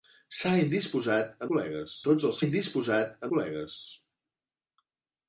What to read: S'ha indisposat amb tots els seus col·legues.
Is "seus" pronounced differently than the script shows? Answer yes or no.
yes